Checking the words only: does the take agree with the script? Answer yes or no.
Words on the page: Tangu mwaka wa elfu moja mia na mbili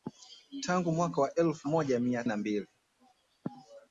yes